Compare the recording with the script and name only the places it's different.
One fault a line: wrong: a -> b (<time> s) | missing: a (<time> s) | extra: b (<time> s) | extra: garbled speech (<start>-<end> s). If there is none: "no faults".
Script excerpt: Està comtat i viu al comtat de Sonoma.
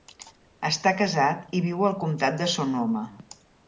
wrong: comtat -> casat (1.0 s)